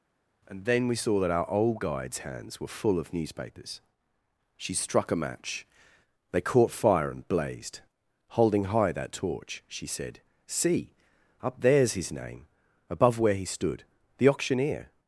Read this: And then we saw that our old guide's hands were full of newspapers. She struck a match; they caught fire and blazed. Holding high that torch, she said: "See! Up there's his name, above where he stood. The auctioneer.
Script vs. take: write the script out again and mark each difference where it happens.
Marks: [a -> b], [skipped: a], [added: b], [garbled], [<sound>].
And then we saw that our old guide's hands were full of newspapers. She struck a match; they caught fire and blazed. Holding high that torch, she said: "See! Up there's his name, above where he stood. The auctioneer.